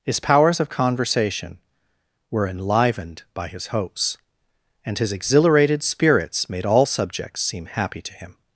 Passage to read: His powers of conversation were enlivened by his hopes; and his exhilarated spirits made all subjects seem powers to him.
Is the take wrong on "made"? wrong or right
right